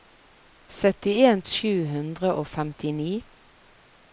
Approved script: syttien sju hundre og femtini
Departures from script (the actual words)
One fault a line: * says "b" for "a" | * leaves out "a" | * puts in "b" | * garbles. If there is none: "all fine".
all fine